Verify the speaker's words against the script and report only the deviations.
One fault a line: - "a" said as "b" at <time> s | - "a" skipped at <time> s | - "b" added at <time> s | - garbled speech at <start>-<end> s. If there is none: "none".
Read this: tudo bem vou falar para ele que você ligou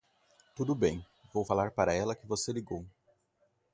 - "ele" said as "ela" at 1.9 s